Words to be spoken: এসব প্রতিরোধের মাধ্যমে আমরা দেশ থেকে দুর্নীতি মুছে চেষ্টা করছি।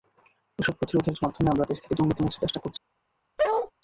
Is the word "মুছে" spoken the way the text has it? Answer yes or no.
yes